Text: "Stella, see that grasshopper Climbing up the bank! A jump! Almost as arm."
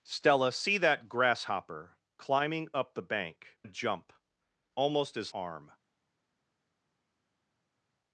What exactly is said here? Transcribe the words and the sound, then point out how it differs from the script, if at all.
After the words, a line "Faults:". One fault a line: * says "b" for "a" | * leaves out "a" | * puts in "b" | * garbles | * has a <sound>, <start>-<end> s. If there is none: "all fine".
"Stella, see that grasshopper Climbing up the bank! A jump! Almost as arm."
Faults:
all fine